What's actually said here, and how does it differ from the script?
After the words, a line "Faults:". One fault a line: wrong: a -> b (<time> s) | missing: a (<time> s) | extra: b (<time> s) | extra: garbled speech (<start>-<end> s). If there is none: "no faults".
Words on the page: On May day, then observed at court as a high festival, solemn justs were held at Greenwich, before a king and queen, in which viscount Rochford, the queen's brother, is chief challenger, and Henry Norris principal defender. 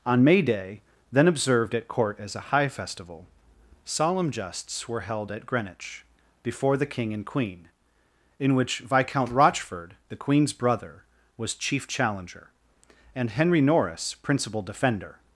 On May day, then observed at court as a high festival, solemn justs were held at Greenwich, before the king and queen, in which viscount Rochford, the queen's brother, was chief challenger, and Henry Norris principal defender.
Faults:
wrong: a -> the (6.8 s)
wrong: is -> was (11.4 s)